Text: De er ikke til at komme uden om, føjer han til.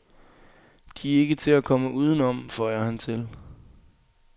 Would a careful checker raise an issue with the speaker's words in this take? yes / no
no